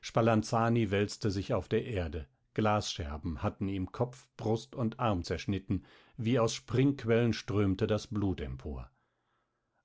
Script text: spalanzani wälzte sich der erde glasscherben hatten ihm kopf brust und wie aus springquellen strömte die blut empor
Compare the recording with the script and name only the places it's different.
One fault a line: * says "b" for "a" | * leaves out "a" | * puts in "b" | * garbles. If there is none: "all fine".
* puts in "auf"
* puts in "arm zerschnitten"
* says "das" for "die"